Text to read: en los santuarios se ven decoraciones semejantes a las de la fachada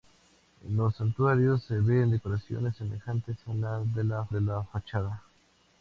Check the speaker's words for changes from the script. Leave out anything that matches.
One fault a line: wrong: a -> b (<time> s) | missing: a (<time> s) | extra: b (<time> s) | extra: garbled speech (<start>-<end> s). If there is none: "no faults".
extra: de la (4.3 s)